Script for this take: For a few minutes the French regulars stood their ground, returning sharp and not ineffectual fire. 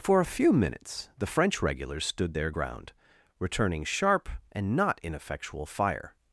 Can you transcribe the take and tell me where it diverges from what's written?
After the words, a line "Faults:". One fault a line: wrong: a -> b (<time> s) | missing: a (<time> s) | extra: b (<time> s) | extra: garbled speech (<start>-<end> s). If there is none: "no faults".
For a few minutes the French regulars stood their ground, returning sharp and not ineffectual fire.
Faults:
no faults